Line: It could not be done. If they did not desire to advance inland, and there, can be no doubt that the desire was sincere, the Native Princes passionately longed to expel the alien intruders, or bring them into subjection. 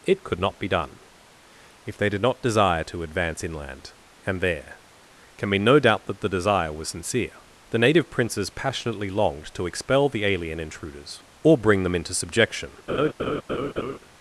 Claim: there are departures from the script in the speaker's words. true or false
false